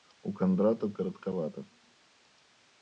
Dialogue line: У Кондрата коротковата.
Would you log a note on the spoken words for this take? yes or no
no